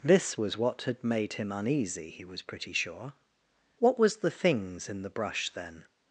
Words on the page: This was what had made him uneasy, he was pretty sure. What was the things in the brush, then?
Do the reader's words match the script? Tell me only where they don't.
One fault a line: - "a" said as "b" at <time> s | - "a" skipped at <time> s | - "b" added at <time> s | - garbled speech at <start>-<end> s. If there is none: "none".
none